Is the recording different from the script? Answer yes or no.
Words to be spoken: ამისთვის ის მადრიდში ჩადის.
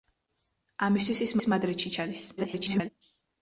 yes